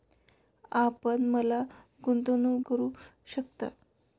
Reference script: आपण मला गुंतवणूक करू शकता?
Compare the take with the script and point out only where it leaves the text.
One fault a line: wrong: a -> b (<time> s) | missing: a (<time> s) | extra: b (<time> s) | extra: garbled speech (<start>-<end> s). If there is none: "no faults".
no faults